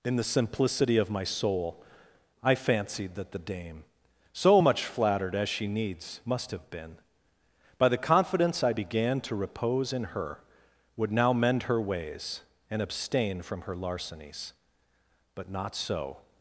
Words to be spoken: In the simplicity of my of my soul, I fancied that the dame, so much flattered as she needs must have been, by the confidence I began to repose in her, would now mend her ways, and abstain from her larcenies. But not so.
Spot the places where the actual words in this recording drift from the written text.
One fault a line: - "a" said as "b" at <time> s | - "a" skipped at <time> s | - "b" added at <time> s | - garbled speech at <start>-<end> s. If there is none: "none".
- "of my" skipped at 1.2 s